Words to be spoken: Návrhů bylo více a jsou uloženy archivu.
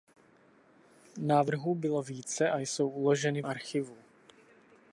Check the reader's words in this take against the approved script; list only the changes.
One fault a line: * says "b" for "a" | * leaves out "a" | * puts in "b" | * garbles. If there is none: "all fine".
all fine